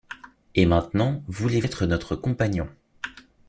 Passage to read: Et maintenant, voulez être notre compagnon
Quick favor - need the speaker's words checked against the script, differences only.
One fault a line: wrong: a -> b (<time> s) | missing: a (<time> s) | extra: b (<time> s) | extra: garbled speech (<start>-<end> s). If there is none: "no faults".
no faults